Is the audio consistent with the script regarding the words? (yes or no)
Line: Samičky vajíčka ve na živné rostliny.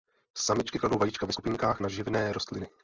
no